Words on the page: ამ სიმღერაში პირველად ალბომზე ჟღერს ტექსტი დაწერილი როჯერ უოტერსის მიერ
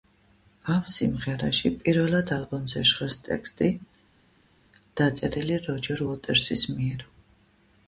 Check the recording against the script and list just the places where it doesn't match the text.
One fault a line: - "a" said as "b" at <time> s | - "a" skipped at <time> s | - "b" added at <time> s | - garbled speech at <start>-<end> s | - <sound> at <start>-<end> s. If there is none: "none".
none